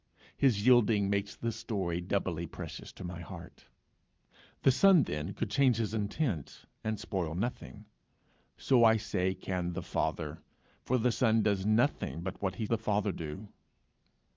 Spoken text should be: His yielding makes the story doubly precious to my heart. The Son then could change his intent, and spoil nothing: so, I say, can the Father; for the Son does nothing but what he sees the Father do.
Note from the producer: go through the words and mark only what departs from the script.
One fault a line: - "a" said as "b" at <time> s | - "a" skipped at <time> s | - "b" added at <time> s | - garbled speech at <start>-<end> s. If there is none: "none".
- "sees" skipped at 12.6 s